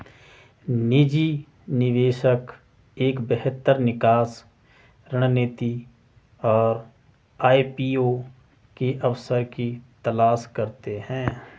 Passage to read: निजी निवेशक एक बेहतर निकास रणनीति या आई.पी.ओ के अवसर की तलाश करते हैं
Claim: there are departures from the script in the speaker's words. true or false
true